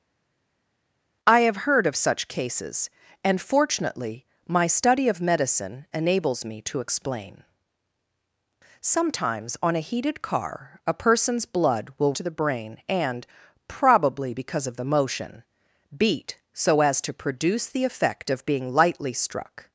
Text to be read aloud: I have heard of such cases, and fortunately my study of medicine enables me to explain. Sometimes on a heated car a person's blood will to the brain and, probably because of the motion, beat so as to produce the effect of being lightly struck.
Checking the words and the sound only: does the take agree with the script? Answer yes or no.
yes